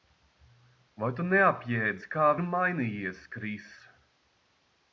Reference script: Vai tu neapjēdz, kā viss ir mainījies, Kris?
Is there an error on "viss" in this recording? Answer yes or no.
yes